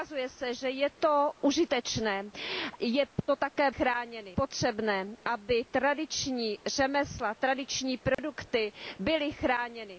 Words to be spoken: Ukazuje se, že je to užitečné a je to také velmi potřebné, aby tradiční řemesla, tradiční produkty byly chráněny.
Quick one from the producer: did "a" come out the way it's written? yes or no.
no